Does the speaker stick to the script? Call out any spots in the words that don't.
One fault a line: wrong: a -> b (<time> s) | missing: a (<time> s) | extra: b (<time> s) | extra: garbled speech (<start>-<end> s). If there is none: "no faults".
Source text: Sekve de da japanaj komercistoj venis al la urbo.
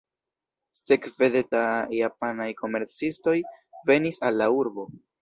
no faults